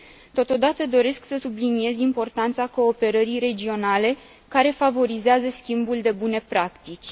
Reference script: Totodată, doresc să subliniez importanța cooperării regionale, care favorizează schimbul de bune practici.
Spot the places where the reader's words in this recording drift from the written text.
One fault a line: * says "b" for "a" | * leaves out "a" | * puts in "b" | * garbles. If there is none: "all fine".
all fine